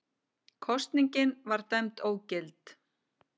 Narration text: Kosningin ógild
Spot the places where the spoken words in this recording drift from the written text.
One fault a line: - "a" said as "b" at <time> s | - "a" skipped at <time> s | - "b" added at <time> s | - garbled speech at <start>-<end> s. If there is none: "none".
- "var dæmd" added at 1.5 s